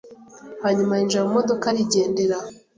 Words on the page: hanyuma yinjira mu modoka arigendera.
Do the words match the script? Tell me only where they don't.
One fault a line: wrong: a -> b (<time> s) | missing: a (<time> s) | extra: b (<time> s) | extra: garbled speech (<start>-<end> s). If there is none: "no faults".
no faults